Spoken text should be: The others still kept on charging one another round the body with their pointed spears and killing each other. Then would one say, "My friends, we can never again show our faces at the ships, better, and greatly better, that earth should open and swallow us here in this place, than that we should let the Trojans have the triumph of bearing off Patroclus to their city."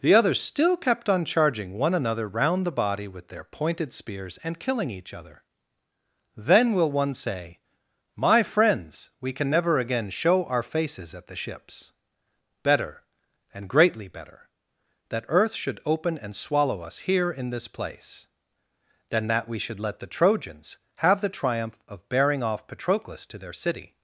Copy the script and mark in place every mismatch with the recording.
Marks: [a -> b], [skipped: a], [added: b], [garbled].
The others still kept on charging one another round the body with their pointed spears and killing each other. Then [would -> will] one say, "My friends, we can never again show our faces at the ships, better, and greatly better, that earth should open and swallow us here in this place, than that we should let the Trojans have the triumph of bearing off Patroclus to their city."